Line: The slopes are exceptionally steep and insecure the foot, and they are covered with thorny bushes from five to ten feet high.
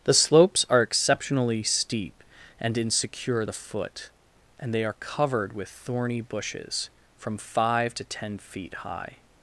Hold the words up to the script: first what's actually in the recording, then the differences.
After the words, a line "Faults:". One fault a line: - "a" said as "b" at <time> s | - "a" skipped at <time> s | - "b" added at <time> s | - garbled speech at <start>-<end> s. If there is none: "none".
The slopes are exceptionally steep and insecure the foot, and they are covered with thorny bushes from five to ten feet high.
Faults:
none